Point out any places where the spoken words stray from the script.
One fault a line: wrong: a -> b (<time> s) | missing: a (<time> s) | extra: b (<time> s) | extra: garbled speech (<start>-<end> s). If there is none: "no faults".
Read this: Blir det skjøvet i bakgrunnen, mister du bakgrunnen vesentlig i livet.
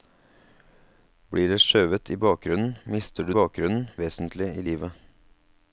no faults